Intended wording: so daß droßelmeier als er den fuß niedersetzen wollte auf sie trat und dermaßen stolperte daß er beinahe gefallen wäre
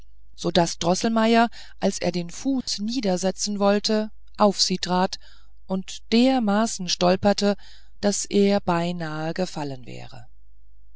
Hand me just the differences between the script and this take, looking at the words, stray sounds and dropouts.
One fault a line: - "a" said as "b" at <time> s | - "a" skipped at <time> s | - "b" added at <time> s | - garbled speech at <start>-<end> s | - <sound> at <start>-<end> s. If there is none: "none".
- dropout at 2.6-2.7 s